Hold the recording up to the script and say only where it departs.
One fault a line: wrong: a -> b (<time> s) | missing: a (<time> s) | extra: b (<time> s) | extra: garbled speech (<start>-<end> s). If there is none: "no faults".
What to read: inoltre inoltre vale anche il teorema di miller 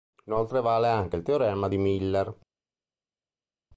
missing: inoltre (0.6 s)